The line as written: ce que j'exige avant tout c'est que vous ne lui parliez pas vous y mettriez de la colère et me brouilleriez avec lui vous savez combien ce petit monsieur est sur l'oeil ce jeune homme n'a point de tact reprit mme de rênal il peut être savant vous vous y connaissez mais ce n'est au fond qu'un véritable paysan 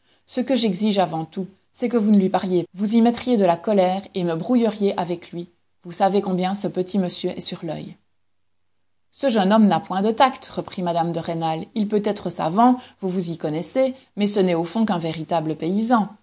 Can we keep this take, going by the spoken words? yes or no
no